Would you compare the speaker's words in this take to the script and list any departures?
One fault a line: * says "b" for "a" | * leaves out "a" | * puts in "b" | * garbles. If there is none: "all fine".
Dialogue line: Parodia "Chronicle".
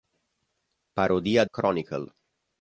all fine